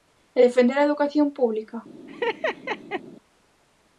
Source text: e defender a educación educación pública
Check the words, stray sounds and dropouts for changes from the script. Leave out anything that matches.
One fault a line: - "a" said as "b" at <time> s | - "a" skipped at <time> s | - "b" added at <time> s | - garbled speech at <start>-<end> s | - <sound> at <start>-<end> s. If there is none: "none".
- "educación" skipped at 1.3 s
- laugh at 2.1-3.0 s